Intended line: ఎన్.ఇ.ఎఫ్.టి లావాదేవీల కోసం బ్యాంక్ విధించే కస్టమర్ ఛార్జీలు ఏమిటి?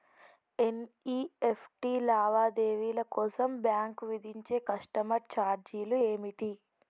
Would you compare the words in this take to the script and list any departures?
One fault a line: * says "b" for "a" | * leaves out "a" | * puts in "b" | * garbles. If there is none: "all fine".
all fine